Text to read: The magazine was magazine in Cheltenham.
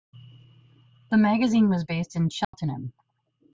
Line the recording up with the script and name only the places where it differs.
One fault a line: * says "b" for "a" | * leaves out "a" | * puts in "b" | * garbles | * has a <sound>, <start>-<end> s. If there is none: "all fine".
* says "based" for "magazine"
* has a dropout, 2.4-2.5 s